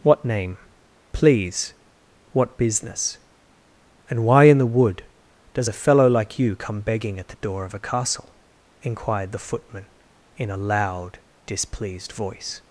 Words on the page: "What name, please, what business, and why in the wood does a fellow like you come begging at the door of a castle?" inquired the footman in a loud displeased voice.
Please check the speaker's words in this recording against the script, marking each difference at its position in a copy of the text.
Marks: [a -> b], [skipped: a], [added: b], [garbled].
"What name, please, what business, and why in the wood does a fellow like you come begging at the door of a castle?" inquired the footman in a loud displeased voice.